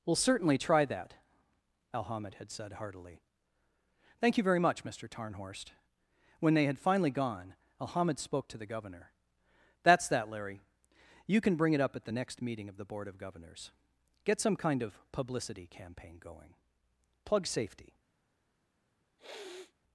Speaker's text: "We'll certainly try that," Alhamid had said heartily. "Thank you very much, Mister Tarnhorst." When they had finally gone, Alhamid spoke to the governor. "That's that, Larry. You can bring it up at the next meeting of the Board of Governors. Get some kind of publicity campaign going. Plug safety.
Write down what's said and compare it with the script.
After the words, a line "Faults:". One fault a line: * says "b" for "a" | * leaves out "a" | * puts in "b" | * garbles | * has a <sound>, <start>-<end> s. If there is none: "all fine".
"We'll certainly try that," Alhamid had said heartily. "Thank you very much, Mister Tarnhorst." When they had finally gone, Alhamid spoke to the governor. "That's that, Larry. You can bring it up at the next meeting of the Board of Governors. Get some kind of publicity campaign going. Plug safety.
Faults:
* has a sniff, 19.2-19.7 s